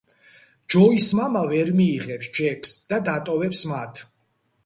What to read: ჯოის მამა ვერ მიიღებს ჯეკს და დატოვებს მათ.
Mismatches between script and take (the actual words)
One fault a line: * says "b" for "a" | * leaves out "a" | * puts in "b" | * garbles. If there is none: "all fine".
all fine